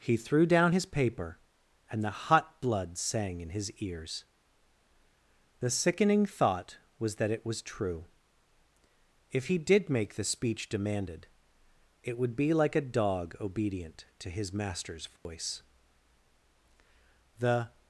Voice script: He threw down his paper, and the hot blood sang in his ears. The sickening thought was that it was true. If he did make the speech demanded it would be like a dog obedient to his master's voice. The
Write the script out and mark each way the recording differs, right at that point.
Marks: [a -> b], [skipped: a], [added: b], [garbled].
He threw down his paper, and the hot blood sang in his ears. The sickening thought was that it was true. If he did make the speech demanded it would be like a dog obedient to his master's voice. The